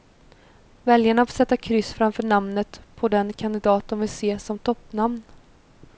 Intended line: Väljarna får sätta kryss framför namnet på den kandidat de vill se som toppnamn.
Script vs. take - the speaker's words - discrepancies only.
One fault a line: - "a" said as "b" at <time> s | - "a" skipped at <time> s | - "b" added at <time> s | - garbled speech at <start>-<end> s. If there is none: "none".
none